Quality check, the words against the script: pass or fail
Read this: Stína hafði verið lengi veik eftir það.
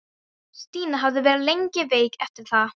pass